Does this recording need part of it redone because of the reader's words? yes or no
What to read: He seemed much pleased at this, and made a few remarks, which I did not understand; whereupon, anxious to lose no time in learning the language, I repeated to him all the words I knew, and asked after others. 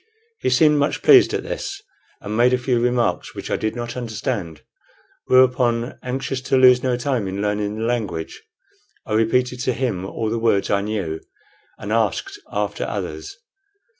no